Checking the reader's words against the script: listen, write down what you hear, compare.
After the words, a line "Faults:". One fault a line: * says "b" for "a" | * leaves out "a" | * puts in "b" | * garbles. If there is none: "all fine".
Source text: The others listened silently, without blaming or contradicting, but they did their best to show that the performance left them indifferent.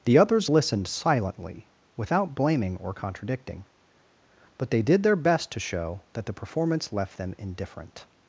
The others listened silently, without blaming or contradicting, but they did their best to show that the performance left them indifferent.
Faults:
all fine